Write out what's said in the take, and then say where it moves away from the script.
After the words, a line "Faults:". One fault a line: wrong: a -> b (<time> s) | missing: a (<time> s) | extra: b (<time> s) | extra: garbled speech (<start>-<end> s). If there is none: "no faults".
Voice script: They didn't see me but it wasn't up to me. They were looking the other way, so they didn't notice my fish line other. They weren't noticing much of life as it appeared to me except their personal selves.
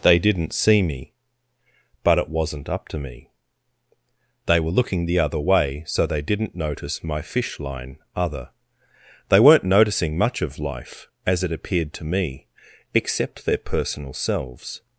They didn't see me but it wasn't up to me. They were looking the other way, so they didn't notice my fish line other. They weren't noticing much of life as it appeared to me except their personal selves.
Faults:
no faults